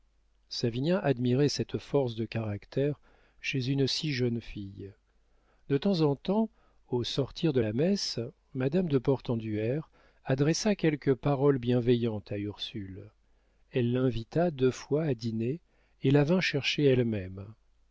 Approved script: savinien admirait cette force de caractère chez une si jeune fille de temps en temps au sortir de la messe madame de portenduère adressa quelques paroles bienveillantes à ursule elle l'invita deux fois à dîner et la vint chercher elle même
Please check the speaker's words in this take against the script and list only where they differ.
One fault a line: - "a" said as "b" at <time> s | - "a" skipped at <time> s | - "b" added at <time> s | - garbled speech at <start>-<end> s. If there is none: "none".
none